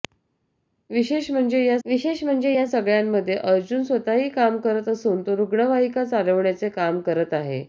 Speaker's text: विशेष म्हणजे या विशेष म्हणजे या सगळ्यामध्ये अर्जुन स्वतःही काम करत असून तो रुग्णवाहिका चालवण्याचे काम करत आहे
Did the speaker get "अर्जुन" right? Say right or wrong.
right